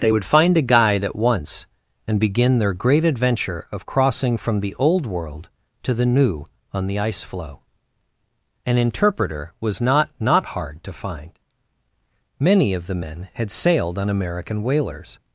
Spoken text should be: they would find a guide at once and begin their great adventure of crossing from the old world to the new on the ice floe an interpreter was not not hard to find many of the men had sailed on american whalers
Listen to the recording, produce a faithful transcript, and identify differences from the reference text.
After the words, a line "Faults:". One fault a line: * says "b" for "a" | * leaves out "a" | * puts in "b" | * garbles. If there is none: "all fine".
they would find a guide at once and begin their great adventure of crossing from the old world to the new on the ice floe an interpreter was not not hard to find many of the men had sailed on american whalers
Faults:
all fine